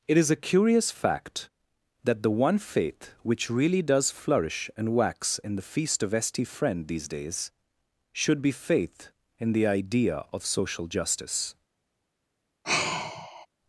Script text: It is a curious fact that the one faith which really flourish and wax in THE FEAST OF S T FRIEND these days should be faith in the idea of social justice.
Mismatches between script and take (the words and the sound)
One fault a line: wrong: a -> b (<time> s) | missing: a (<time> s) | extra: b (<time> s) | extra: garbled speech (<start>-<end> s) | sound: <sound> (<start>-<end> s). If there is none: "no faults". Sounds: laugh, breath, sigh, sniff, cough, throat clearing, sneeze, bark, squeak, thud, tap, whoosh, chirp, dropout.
extra: does (3.8 s)
sound: sigh (12.6-13.5 s)